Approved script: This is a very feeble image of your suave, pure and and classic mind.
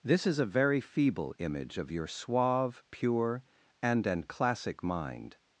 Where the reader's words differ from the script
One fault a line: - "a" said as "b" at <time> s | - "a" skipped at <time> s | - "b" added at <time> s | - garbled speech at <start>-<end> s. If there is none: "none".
none